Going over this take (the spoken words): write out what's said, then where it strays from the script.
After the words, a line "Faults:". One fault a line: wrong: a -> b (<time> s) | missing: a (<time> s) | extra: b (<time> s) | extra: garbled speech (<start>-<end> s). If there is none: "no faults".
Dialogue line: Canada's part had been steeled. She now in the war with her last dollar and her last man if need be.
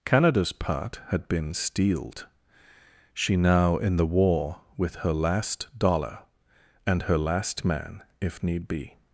Canada's part had been steeled. She now in the war with her last dollar and her last man if need be.
Faults:
no faults